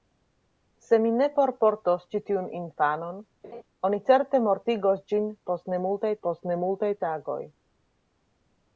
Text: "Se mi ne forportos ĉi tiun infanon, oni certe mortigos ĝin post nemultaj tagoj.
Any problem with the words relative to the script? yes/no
yes